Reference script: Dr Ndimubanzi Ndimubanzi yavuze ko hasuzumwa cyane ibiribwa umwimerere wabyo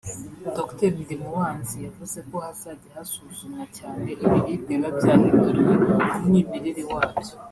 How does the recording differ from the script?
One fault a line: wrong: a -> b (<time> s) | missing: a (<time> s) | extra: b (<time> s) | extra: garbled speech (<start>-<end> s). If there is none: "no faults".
missing: Ndimubanzi (1.8 s)
extra: hazajya (2.5 s)
extra: biba byahinduriwe (4.7 s)